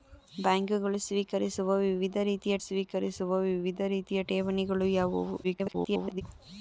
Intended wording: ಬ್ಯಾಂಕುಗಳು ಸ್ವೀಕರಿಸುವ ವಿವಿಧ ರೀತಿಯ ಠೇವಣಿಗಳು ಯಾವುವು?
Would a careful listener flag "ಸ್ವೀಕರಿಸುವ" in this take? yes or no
no